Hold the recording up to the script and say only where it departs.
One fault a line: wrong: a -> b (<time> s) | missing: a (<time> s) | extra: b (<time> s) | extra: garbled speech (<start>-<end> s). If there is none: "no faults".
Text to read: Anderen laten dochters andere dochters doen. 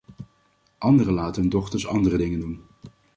extra: hun (1.4 s)
wrong: dochters -> dingen (2.2 s)